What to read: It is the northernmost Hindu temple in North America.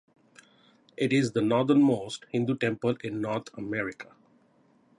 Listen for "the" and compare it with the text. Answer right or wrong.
right